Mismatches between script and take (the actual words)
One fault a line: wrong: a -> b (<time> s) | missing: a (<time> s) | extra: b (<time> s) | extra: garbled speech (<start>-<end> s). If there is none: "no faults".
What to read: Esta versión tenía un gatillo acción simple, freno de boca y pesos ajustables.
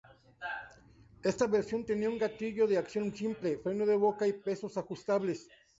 extra: de (2.6 s)